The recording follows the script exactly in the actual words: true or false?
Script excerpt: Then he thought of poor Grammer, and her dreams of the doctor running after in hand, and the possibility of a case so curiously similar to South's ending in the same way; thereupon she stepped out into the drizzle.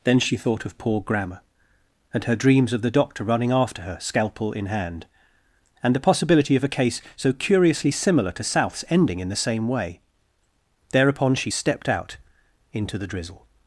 false